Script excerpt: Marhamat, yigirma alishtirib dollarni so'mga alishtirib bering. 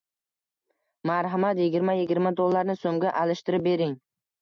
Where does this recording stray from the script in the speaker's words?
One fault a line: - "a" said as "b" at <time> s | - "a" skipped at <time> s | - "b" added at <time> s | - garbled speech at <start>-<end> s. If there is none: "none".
- "alishtirib" said as "yigirma" at 2.0 s